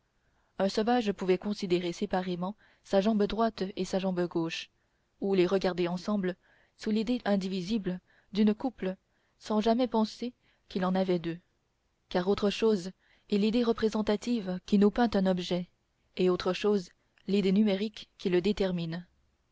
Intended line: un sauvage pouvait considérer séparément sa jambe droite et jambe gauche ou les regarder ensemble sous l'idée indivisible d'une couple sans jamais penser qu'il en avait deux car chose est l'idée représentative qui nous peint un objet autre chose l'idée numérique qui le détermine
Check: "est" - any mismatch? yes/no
no